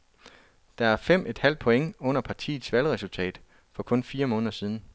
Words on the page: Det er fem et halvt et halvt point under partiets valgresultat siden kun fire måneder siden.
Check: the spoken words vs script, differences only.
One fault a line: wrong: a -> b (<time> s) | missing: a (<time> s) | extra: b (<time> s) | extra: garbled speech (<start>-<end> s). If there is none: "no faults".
missing: et halvt (1.6 s)
wrong: siden -> for (3.7 s)